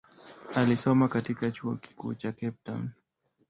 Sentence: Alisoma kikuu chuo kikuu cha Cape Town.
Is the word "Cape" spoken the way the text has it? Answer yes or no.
yes